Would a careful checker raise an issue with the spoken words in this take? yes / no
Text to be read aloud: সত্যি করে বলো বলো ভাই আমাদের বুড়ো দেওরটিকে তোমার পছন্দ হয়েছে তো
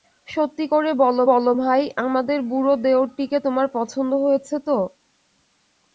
no